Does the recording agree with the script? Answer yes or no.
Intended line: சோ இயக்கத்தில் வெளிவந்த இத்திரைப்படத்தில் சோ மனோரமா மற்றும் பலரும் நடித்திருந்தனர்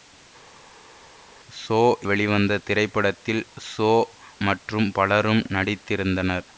no